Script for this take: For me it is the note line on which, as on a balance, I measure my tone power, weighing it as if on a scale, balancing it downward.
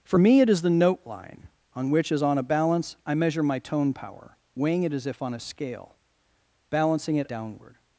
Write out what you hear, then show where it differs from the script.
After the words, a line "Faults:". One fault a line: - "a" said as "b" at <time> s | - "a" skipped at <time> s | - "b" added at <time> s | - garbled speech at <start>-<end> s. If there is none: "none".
For me it is the note line on which, as on a balance, I measure my tone power, weighing it as if on a scale, balancing it downward.
Faults:
none